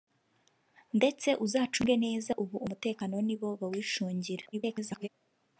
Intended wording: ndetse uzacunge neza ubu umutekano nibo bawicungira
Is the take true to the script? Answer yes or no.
no